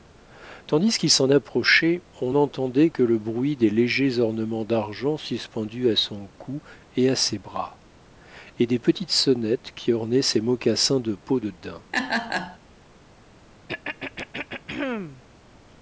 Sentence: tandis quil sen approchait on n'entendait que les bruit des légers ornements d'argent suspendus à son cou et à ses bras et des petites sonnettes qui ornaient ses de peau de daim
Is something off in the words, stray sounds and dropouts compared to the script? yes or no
yes